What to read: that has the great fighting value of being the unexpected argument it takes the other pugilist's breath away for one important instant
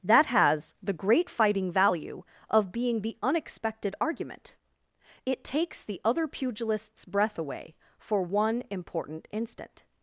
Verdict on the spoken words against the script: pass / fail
pass